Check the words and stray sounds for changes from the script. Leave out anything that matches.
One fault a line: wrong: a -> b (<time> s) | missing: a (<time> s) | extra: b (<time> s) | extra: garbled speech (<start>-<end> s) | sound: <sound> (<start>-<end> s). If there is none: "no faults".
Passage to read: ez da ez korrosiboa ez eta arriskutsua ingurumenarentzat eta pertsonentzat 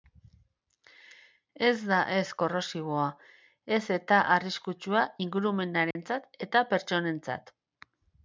sound: dropout (5.9-6.0 s)